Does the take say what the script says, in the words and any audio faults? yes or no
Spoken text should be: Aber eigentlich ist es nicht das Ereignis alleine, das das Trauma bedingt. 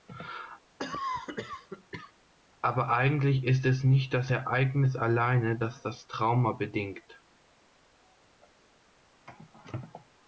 no